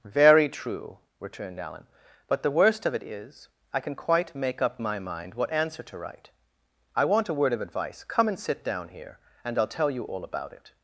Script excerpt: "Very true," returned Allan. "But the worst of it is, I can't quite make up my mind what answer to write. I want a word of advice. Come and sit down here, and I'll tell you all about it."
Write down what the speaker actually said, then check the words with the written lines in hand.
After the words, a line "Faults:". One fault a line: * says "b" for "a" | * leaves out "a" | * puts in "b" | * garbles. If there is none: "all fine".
"Very true," returned Allan. "But the worst of it is, I can quite make up my mind what answer to write. I want a word of advice. Come and sit down here, and I'll tell you all about it."
Faults:
* says "can" for "can't"